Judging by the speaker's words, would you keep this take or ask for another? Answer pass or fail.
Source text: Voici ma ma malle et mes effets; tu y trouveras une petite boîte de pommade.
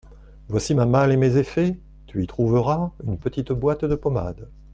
fail